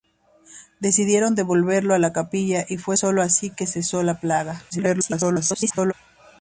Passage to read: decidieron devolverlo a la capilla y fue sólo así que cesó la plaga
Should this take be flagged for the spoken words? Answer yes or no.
yes